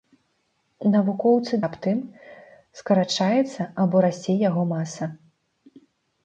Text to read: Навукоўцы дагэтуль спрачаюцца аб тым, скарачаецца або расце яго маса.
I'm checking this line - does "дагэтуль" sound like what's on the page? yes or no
no